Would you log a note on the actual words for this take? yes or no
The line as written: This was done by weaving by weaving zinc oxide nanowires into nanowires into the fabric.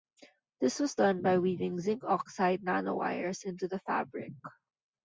yes